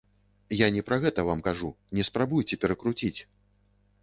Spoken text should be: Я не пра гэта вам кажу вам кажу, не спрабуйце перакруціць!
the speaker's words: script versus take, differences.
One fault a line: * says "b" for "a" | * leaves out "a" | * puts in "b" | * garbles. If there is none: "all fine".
* leaves out "вам кажу"